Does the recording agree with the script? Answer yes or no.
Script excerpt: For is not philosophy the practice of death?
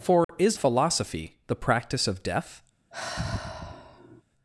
no